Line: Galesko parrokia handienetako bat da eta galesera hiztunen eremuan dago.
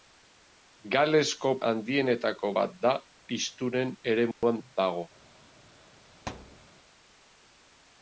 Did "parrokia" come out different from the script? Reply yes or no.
yes